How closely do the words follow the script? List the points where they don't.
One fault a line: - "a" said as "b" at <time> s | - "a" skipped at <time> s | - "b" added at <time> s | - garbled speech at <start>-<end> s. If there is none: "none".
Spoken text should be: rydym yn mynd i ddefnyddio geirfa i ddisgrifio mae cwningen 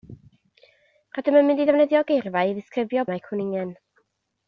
none